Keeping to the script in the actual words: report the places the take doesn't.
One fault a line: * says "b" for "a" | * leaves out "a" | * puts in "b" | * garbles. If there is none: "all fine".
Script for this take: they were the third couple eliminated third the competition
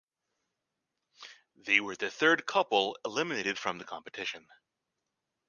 * says "from" for "third"